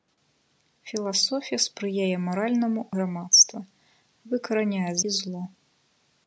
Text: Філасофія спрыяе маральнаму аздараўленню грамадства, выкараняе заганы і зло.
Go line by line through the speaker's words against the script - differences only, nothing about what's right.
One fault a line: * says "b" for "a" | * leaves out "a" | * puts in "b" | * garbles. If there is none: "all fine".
* leaves out "аздараўленню"
* leaves out "заганы"